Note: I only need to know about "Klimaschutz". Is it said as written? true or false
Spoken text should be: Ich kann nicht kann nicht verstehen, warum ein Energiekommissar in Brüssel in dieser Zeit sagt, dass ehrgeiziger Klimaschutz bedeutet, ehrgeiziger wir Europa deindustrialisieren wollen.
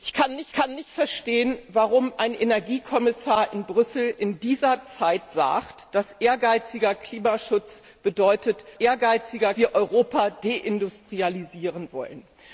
true